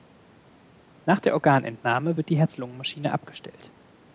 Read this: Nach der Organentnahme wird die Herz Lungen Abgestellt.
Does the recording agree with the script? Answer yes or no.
no